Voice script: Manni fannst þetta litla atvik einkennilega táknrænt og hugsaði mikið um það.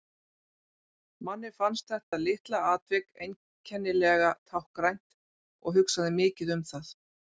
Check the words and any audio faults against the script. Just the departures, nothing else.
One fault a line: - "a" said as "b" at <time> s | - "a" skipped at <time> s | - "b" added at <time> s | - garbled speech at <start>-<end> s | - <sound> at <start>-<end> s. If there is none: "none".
- dropout at 2.1-2.1 s